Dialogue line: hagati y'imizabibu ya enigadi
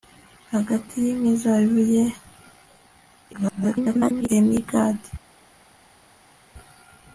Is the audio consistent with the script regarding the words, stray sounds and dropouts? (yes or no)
no